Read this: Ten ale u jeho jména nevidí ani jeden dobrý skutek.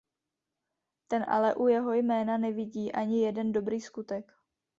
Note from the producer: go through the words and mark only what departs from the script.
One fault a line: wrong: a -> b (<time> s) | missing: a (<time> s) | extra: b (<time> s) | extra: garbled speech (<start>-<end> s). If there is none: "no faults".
no faults